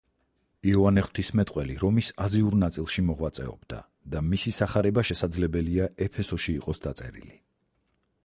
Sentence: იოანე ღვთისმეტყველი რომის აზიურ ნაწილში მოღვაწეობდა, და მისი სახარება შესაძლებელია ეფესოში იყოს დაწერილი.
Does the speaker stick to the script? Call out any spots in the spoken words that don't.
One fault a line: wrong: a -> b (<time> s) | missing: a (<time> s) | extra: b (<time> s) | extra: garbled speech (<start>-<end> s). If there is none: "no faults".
no faults